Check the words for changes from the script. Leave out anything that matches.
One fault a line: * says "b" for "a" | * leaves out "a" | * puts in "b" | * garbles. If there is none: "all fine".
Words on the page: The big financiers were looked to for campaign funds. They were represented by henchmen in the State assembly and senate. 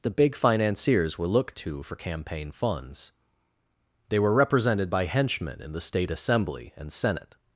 all fine